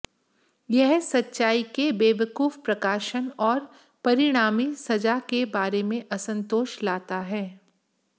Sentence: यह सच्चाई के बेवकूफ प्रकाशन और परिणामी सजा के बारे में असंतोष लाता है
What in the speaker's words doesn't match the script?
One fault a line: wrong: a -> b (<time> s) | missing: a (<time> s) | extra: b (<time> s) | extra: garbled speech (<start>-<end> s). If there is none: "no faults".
no faults